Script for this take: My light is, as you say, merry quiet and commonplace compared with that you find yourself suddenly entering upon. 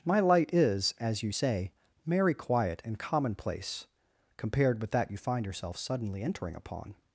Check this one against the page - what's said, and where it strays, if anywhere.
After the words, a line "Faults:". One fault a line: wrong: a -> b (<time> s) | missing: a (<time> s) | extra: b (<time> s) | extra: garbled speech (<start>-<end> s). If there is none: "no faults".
My light is, as you say, merry quiet and commonplace compared with that you find yourself suddenly entering upon.
Faults:
no faults